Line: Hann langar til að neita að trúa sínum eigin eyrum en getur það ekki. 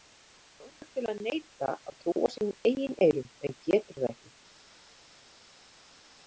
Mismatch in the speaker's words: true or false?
false